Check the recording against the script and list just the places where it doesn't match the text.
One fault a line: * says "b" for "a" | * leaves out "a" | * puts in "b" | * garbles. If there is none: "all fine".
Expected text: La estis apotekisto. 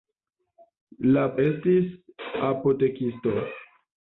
all fine